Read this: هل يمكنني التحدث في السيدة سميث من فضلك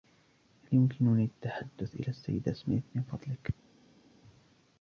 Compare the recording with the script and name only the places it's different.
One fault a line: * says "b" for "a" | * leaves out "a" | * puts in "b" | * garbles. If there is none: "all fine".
* says "إلى" for "في"